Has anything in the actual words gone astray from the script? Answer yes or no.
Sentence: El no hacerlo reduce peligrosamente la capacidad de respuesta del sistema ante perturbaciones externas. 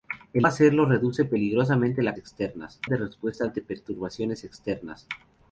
yes